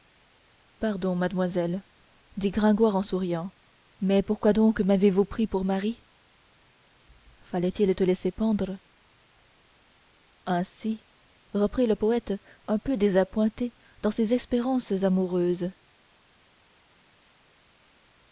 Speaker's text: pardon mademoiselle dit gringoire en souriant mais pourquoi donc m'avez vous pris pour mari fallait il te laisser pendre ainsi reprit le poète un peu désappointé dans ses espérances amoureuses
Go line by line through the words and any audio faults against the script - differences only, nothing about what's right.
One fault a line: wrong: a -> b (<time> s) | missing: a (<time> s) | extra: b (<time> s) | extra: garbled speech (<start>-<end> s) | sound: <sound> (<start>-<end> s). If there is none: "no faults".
no faults